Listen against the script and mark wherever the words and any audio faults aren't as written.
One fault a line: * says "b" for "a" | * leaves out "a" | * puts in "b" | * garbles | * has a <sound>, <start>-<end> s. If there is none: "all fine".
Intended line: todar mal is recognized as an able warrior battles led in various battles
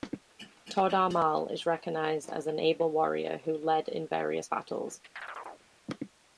* says "who" for "battles"
* has a chirp, 5.2-5.7 s